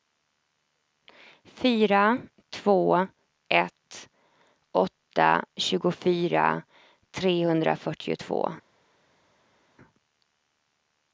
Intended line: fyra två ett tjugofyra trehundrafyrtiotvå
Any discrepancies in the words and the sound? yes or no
yes